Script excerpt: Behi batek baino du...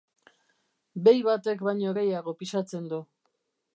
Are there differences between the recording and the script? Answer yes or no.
yes